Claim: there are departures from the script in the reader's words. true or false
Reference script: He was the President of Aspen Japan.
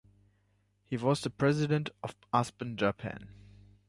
false